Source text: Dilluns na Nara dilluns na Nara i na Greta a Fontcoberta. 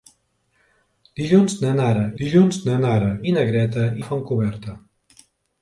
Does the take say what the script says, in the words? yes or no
yes